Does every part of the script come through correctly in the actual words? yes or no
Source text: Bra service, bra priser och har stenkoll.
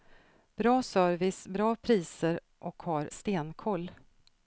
yes